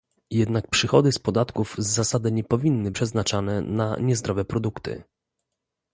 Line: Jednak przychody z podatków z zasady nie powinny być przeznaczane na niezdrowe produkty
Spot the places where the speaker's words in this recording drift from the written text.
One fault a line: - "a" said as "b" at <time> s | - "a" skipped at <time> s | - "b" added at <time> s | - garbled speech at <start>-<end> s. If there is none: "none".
- "być" skipped at 2.9 s